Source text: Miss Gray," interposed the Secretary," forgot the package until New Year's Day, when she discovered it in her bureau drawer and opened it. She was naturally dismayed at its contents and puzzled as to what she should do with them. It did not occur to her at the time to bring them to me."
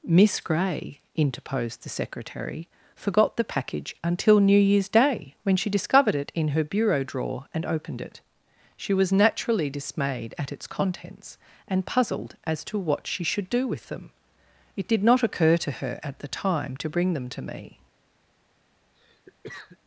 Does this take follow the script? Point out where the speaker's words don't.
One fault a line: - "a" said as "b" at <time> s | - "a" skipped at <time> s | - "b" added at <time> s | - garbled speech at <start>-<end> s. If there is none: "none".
none